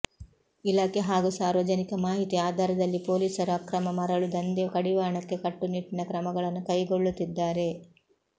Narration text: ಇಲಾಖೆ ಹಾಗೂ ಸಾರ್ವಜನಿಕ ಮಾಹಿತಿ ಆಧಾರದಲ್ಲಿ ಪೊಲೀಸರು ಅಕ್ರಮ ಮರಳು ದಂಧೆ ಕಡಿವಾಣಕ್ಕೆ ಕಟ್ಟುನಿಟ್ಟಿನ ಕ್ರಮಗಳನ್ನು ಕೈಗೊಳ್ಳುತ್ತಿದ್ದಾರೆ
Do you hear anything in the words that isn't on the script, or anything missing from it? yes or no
no